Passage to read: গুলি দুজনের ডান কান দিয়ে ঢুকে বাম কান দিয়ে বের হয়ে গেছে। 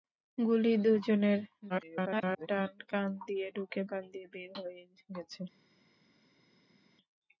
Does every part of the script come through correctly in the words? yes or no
no